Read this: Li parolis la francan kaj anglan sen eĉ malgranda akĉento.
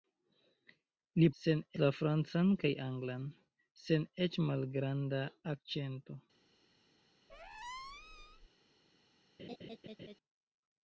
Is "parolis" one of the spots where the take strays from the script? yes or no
yes